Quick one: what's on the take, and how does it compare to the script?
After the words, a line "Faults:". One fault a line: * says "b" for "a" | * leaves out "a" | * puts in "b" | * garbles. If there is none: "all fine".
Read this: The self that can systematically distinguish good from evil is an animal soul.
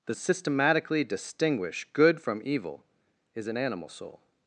The systematically distinguish good from evil is an animal soul.
Faults:
* leaves out "self that can"